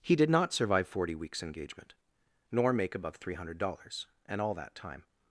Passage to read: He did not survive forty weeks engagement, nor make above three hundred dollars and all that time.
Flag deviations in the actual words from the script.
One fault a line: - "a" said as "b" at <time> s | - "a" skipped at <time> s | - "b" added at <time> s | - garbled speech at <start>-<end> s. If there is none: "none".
none